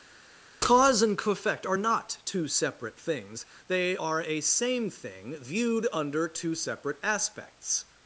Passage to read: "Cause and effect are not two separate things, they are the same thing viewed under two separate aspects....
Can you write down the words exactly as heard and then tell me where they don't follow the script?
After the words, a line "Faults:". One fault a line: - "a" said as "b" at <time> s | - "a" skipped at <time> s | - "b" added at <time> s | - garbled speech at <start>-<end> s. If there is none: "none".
"Cause and effect are not two separate things, they are a same thing viewed under two separate aspects....
Faults:
- "the" said as "a" at 4.2 s